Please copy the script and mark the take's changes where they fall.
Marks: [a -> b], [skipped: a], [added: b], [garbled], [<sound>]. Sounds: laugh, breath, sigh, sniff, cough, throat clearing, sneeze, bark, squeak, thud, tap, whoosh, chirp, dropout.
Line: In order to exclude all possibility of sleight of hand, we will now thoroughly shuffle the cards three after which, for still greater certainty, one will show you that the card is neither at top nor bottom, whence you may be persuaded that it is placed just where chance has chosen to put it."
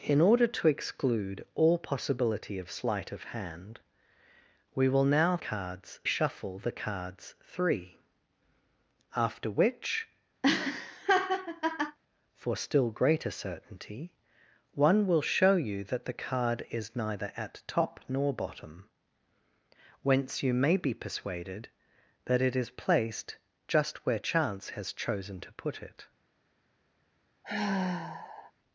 In order to exclude all possibility of sleight of hand, we will now [thoroughly -> cards] shuffle the cards three after which, [laugh] for still greater certainty, one will show you that the card is neither at top nor bottom, whence you may be persuaded that it is placed just where chance has chosen to put it." [sigh]